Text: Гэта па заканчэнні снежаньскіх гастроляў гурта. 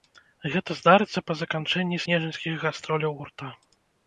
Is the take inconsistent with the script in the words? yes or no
yes